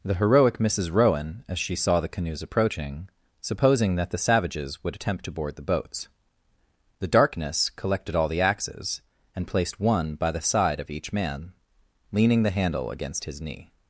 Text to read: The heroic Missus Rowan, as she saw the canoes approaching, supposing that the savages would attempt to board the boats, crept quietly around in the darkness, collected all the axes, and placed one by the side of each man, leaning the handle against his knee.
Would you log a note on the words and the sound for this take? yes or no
yes